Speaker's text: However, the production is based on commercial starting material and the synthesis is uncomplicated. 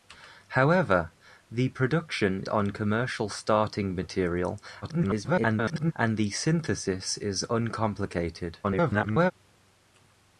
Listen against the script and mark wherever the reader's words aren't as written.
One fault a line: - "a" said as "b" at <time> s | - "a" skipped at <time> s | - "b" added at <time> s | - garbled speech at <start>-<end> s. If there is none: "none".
- "is based" skipped at 2.4 s
- garbled speech at 4.8-5.9 s
- garbled speech at 8.6-9.3 s